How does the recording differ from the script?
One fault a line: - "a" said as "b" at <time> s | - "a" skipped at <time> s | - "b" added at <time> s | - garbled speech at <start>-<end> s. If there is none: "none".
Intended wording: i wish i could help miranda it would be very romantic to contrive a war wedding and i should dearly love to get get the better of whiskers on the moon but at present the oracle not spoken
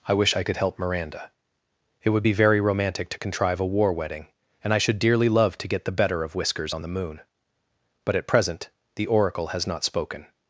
- "get" skipped at 5.9 s
- "has" added at 9.5 s